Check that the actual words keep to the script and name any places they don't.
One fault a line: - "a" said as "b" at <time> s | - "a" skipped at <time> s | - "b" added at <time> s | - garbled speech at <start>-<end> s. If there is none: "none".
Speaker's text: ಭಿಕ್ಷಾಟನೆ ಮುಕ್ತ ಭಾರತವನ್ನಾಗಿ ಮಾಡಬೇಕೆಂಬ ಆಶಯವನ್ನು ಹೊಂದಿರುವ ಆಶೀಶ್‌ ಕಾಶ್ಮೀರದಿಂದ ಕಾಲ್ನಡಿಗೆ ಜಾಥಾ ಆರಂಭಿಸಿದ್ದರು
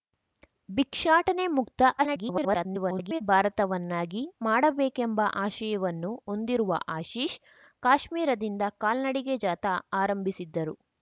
- garbled speech at 2.0-3.2 s